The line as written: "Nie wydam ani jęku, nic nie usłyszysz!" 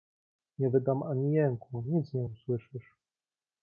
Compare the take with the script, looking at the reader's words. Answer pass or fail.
pass